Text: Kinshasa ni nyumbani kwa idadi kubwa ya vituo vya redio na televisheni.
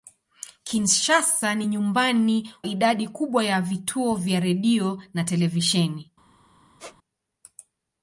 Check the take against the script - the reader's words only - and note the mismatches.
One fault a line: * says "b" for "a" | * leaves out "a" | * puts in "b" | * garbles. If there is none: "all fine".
* leaves out "kwa"